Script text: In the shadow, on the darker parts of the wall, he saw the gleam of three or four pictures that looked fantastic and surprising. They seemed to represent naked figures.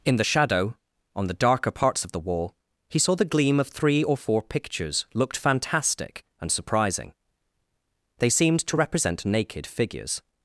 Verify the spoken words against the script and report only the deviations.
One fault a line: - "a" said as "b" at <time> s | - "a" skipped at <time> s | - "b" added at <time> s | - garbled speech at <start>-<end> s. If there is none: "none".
- "that" skipped at 5.1 s